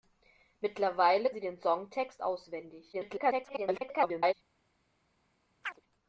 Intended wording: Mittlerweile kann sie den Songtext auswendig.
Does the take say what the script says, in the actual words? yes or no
no